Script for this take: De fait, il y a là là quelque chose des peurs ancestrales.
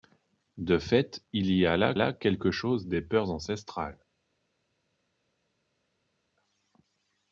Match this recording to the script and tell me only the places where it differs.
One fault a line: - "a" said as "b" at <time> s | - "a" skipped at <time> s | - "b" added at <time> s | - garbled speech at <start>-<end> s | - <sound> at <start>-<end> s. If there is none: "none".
none